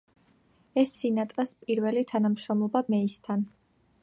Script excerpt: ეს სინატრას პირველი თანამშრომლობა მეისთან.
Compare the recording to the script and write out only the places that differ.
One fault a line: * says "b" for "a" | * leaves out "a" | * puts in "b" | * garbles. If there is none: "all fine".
all fine